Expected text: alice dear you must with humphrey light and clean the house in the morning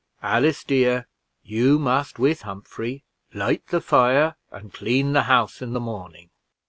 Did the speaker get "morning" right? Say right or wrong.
right